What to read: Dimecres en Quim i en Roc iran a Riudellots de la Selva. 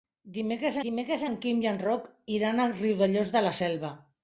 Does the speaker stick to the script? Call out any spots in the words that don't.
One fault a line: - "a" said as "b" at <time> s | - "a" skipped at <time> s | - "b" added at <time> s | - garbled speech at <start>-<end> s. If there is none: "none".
- "dimecres" added at 0.8 s